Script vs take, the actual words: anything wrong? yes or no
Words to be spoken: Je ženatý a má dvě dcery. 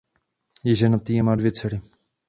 no